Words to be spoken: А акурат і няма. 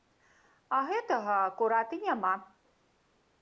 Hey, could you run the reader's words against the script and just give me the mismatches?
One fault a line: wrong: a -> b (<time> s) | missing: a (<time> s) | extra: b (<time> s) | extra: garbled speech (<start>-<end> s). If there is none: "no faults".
extra: гэтага (0.9 s)